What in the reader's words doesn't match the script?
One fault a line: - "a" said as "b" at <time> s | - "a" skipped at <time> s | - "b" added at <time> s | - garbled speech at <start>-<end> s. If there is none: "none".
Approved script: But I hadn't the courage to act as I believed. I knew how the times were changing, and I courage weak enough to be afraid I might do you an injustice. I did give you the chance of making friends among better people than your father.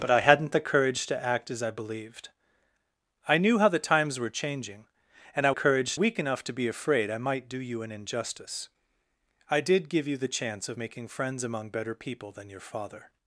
none